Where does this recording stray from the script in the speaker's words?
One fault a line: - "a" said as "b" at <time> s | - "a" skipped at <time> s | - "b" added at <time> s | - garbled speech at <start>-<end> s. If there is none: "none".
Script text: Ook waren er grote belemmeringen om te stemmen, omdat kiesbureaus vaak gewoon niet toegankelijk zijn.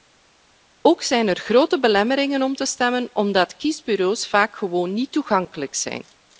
- "waren" said as "zijn" at 1.0 s